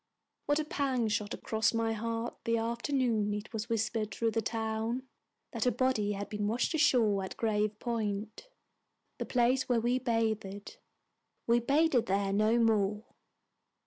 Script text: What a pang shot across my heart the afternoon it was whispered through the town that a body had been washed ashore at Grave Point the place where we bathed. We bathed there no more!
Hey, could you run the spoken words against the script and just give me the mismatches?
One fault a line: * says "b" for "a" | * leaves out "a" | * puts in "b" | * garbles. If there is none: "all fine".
all fine